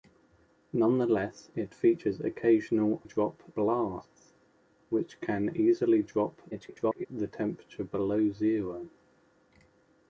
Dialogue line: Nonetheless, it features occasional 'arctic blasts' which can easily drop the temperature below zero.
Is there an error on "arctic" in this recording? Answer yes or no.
yes